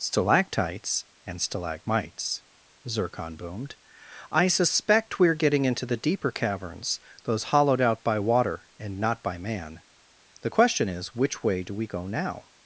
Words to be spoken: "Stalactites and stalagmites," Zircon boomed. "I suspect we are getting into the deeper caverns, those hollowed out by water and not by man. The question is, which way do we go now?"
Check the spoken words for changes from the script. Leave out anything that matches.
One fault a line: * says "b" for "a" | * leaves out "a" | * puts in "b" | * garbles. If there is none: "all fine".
all fine